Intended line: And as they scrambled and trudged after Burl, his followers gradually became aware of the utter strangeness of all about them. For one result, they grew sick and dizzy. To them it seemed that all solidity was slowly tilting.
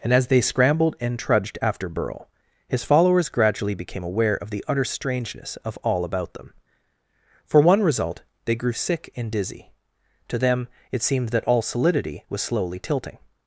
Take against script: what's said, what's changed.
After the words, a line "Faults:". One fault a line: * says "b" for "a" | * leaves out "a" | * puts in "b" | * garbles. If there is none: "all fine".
And as they scrambled and trudged after Burl, his followers gradually became aware of the utter strangeness of all about them. For one result, they grew sick and dizzy. To them it seemed that all solidity was slowly tilting.
Faults:
all fine